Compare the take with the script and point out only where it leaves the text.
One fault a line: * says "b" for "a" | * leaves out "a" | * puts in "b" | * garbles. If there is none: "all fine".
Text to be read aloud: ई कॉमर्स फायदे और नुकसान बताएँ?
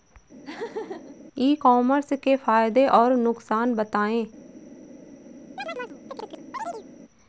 * puts in "के"